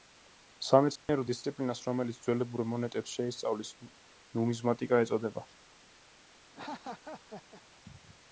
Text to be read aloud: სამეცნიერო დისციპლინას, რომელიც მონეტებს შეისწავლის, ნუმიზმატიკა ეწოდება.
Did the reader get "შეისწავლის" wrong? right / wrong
right